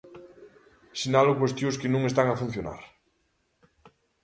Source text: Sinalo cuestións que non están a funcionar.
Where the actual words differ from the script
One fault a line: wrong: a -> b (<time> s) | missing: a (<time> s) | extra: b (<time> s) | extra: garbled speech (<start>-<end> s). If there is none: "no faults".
no faults